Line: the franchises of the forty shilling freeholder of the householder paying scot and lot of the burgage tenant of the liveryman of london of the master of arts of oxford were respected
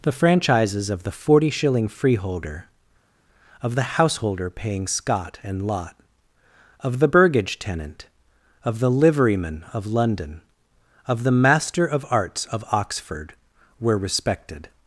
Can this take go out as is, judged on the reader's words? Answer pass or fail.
pass